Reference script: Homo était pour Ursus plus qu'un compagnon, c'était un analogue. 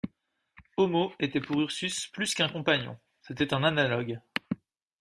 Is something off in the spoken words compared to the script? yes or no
no